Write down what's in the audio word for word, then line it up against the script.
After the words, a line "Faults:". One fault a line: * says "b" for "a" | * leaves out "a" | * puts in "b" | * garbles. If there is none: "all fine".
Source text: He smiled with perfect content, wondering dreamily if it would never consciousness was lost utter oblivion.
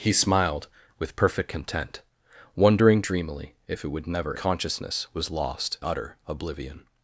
He smiled with perfect content, wondering dreamily if it would never consciousness was lost utter oblivion.
Faults:
all fine